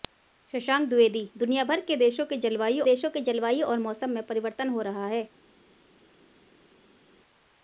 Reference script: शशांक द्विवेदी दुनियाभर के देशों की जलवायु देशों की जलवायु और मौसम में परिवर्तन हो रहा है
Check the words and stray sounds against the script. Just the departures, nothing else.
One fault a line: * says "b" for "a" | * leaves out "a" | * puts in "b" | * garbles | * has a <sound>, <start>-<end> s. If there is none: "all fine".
all fine